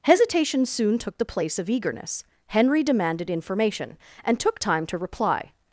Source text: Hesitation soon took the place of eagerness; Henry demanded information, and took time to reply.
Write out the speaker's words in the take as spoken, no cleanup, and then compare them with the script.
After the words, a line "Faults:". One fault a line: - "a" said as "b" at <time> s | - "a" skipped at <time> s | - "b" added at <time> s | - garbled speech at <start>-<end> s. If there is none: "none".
Hesitation soon took the place of eagerness; Henry demanded information, and took time to reply.
Faults:
none